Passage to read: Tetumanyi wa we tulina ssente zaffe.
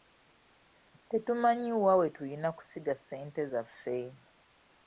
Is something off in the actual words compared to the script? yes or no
yes